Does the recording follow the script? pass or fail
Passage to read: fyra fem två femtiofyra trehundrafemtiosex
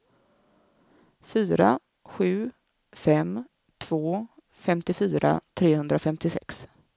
fail